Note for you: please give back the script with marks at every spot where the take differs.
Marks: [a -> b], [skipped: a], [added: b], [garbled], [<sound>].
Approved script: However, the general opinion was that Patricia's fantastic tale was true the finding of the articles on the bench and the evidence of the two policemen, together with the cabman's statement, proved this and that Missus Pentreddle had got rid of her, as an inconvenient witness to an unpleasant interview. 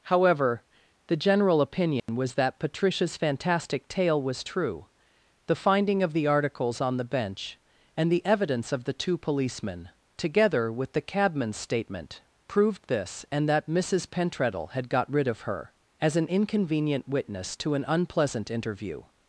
However, the general opinion [dropout] was that Patricia's fantastic tale was true the finding of the articles on the bench and the evidence of the two policemen, together with the cabman's statement, proved this and that Missus Pentreddle had got rid of her, as an inconvenient witness to an unpleasant interview.